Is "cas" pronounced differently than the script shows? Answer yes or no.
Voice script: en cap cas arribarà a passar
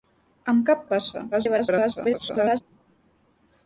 yes